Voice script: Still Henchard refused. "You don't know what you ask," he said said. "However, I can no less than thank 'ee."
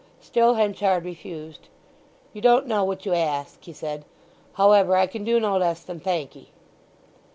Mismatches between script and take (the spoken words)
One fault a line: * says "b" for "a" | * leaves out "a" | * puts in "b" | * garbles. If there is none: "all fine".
* leaves out "said"
* puts in "do"